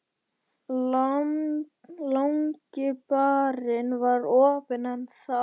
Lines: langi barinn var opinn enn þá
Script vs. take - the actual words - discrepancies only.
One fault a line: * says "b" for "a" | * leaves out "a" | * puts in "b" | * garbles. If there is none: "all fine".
all fine